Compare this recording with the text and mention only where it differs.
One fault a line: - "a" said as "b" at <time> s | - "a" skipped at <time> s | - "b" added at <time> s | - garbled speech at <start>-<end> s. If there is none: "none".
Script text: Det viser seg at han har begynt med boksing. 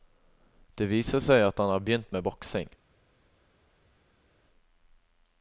none